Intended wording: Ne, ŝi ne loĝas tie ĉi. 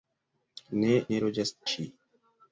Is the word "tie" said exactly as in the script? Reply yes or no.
no